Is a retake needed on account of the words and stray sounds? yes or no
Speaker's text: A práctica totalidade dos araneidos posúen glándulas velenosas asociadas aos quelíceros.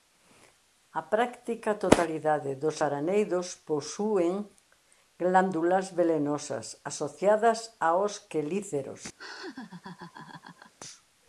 yes